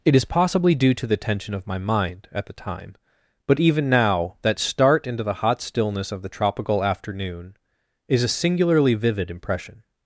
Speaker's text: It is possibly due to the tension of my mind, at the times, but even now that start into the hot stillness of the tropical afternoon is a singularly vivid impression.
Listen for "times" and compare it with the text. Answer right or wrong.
wrong